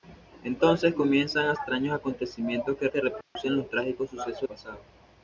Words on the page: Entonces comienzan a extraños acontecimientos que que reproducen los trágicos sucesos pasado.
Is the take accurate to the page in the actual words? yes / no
yes